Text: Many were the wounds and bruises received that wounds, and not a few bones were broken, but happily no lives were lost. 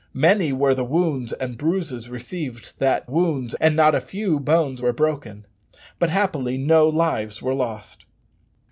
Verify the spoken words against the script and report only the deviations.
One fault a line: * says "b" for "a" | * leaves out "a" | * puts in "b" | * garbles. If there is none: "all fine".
all fine